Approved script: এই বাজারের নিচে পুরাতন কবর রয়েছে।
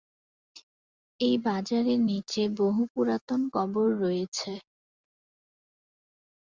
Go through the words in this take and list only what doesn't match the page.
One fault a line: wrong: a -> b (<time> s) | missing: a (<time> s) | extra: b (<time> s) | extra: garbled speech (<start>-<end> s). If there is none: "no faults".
extra: বহু (2.6 s)